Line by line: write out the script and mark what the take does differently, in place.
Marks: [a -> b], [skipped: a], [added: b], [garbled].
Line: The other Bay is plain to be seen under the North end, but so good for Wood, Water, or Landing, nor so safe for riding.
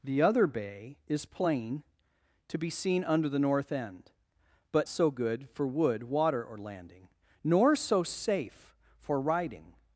The other Bay is plain to be seen under the North end, but so good for Wood, Water, or Landing, nor so safe for riding.